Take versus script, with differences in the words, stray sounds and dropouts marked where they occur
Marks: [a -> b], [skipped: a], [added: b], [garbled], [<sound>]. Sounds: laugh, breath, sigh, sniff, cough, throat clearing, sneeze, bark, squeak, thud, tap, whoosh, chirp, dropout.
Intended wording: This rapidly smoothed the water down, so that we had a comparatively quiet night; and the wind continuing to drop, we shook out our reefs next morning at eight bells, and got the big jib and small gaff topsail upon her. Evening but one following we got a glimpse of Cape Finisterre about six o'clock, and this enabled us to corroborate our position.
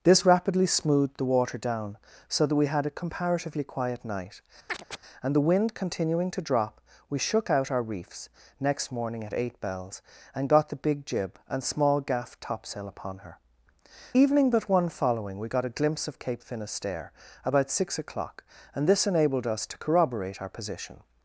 This rapidly smoothed the water down, so that we had a comparatively quiet night; [chirp] and the wind continuing to drop, we shook out our reefs next morning at eight bells, and got the big jib and small gaff topsail upon her. Evening but one following we got a glimpse of Cape Finisterre about six o'clock, and this enabled us to corroborate our position.